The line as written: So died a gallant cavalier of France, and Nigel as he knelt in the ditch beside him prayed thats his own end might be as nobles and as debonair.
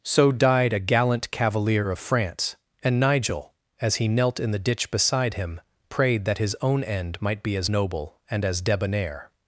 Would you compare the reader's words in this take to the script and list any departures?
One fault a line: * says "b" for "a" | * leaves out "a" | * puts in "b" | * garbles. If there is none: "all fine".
* says "that" for "thats"
* says "noble" for "nobles"